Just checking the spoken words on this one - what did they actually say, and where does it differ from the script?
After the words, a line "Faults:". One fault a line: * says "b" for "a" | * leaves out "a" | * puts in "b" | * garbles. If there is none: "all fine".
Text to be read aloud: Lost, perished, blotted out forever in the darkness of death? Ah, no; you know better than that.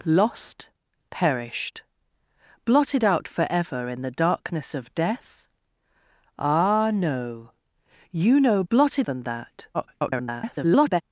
Lost, perished, blotted out forever in the darkness of death? Ah, no; you know blotted than that. [garbled]
Faults:
* says "blotted" for "better"
* garbles